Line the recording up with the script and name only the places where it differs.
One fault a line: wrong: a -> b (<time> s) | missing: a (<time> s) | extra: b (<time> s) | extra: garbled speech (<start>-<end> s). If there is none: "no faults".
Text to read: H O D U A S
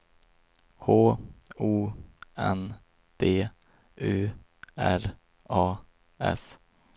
extra: N (2.4 s)
extra: R (4.8 s)